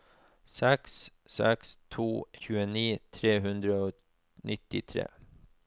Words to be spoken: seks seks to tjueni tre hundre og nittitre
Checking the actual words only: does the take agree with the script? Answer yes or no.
yes